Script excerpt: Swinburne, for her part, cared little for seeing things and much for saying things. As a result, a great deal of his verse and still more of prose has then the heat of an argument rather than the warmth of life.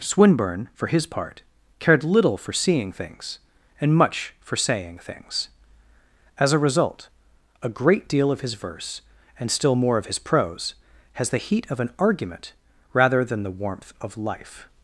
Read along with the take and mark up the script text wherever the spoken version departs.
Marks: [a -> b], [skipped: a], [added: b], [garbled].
Swinburne, for [her -> his] part, cared little for seeing things and much for saying things. As a result, a great deal of his verse and still more of [added: his] prose has [skipped: then] the heat of an argument rather than the warmth of life.